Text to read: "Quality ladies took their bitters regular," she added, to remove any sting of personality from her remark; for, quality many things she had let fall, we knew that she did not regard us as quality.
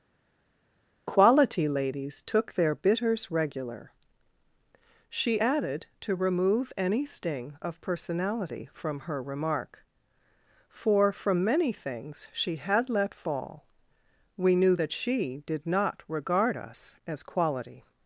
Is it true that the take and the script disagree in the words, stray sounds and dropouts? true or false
true